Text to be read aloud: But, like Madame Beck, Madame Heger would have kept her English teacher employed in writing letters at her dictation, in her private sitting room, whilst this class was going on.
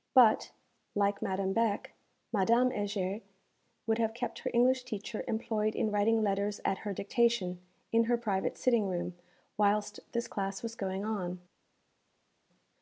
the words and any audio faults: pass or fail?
pass